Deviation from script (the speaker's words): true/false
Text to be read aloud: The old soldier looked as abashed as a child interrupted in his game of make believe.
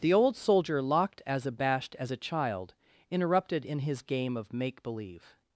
true